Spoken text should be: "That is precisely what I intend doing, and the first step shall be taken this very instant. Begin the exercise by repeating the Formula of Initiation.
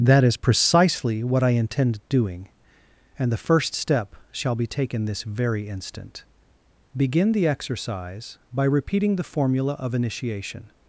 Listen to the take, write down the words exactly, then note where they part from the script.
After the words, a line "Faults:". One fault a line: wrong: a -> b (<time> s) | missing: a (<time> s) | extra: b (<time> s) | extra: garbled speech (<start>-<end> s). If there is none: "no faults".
"That is precisely what I intend doing, and the first step shall be taken this very instant. Begin the exercise by repeating the Formula of Initiation.
Faults:
no faults